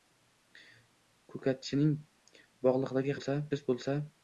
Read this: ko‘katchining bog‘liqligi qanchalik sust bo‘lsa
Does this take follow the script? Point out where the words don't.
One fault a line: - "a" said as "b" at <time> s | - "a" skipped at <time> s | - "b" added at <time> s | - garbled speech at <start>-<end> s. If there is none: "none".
- "qanchalik" said as "bo‘lsa" at 3.1 s